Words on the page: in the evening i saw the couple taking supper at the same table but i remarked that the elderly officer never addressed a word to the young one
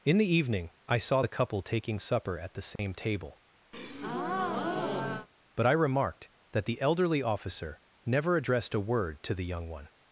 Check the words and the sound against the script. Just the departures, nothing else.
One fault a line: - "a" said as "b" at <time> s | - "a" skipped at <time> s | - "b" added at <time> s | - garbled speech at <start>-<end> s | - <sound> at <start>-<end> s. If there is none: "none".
- dropout at 2.8-2.8 s
- breath at 3.7-5.3 s